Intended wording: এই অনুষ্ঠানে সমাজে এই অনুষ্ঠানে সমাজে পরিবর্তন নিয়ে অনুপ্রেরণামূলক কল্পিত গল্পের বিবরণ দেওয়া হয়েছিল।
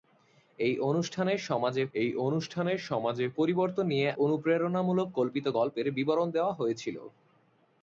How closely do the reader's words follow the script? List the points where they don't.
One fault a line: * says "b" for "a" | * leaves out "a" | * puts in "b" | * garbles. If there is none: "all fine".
all fine